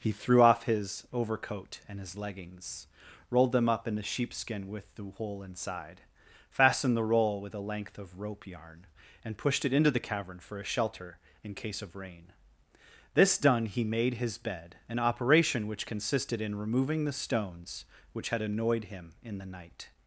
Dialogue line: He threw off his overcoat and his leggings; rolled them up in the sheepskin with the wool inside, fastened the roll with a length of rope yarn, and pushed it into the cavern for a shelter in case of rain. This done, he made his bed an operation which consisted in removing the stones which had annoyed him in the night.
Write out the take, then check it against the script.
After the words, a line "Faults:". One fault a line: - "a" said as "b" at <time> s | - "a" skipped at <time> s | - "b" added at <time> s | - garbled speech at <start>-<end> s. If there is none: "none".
He threw off his overcoat and his leggings; rolled them up in the sheepskin with the wool inside, fastened the roll with a length of rope yarn, and pushed it into the cavern for a shelter in case of rain. This done, he made his bed an operation which consisted in removing the stones which had annoyed him in the night.
Faults:
none